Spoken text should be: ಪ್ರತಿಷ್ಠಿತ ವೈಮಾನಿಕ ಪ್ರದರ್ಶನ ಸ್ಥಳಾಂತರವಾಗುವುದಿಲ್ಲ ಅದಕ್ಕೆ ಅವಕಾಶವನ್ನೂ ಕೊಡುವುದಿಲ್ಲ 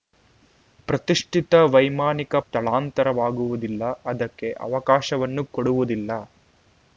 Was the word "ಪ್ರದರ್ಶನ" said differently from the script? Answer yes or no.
yes